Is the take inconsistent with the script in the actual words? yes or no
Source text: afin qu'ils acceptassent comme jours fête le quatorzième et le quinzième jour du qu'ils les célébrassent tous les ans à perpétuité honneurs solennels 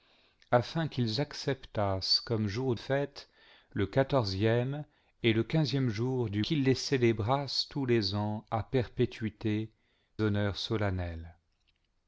no